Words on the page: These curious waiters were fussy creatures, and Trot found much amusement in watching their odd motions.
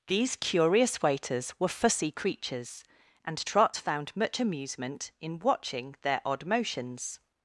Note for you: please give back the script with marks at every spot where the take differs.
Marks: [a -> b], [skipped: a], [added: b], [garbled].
These curious waiters were fussy creatures, and Trot found much amusement in watching their odd motions.